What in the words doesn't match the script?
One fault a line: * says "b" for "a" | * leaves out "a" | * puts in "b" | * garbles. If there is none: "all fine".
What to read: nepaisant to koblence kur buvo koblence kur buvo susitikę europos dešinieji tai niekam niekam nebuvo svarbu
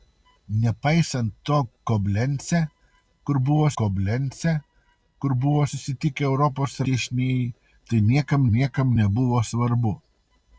all fine